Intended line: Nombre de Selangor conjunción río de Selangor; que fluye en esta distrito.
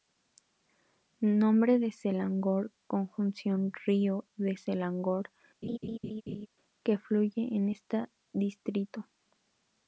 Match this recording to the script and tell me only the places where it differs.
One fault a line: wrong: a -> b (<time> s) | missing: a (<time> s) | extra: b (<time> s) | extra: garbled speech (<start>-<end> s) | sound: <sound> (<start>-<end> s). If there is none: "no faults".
sound: laugh (5.6-6.5 s)